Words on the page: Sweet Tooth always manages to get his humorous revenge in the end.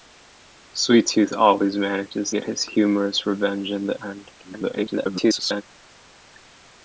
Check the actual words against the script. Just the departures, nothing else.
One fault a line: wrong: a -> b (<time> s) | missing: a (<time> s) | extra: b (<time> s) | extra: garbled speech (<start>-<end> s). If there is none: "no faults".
missing: to (2.3 s)
extra: garbled speech (4.4-5.6 s)